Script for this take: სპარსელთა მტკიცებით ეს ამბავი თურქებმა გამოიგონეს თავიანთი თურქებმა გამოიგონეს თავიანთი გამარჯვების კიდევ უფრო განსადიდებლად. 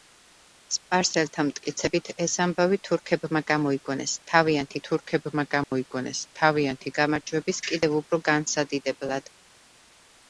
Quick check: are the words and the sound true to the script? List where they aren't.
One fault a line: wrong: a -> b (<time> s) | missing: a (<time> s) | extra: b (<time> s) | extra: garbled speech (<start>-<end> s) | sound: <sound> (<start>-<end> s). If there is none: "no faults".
sound: dropout (5.6-5.7 s)